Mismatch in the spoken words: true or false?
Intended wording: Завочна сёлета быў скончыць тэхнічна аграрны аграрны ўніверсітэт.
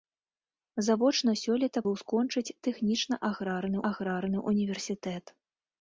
false